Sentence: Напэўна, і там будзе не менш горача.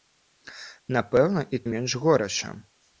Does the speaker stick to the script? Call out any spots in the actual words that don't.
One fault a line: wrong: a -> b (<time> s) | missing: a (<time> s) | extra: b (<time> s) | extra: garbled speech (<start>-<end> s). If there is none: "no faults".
missing: там будзе (1.6 s)